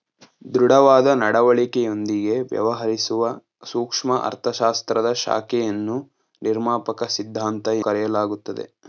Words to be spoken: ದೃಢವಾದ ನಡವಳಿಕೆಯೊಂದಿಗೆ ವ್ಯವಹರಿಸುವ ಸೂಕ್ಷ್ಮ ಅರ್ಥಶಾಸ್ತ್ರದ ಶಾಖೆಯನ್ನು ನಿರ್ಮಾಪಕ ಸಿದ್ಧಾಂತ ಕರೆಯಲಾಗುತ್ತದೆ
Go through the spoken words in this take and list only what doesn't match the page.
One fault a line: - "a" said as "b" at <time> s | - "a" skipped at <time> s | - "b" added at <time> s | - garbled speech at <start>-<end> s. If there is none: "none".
none